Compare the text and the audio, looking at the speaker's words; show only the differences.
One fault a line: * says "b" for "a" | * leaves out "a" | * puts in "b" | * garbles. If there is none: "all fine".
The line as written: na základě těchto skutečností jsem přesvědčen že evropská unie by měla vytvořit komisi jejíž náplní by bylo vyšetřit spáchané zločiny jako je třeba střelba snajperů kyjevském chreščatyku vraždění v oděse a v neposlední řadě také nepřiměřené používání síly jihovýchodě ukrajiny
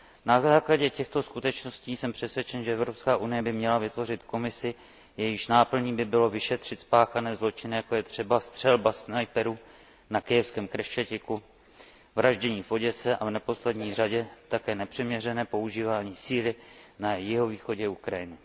* puts in "na"
* puts in "na"